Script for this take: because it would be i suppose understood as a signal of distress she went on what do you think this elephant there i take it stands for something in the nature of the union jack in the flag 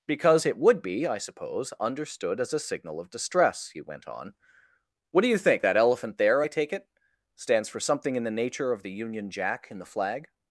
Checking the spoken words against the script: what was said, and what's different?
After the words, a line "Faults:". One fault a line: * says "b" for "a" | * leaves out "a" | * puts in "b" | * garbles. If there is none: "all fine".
because it would be i suppose understood as a signal of distress he went on what do you think that elephant there i take it stands for something in the nature of the union jack in the flag
Faults:
* says "he" for "she"
* says "that" for "this"